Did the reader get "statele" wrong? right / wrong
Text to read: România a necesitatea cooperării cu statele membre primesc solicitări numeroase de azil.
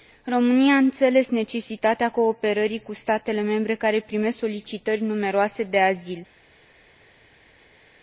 right